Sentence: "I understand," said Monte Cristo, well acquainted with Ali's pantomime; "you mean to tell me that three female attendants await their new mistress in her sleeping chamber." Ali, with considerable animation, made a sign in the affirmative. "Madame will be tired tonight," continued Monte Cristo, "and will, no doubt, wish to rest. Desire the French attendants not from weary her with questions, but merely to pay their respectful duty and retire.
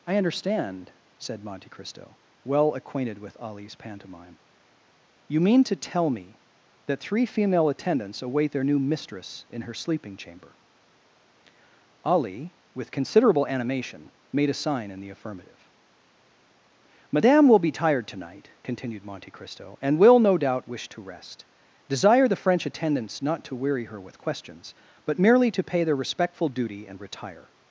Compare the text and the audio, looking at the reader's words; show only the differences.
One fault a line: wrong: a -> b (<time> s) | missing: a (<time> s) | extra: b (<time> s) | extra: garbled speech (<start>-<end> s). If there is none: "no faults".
wrong: from -> to (23.4 s)